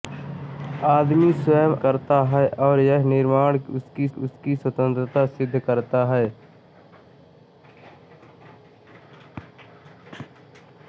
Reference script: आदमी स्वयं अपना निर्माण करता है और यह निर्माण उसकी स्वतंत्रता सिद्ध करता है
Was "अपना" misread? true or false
true